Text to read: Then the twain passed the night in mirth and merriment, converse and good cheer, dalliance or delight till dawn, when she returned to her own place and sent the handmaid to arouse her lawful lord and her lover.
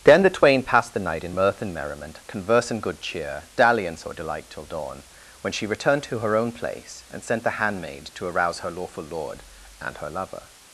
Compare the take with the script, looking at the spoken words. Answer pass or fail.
pass